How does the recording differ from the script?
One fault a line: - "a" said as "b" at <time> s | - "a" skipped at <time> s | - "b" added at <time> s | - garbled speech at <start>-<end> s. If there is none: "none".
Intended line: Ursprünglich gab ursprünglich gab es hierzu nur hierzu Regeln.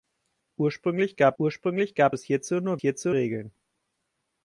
none